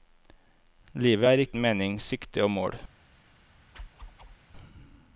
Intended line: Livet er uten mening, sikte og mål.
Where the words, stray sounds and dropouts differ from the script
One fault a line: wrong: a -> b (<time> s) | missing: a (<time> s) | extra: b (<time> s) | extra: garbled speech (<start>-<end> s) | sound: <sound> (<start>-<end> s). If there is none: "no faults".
sound: whoosh (3.7-4.4 s)